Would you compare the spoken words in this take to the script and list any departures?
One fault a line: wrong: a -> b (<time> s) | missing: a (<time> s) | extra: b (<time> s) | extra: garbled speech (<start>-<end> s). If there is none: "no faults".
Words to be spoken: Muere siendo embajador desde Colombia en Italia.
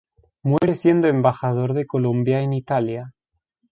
wrong: desde -> de (1.7 s)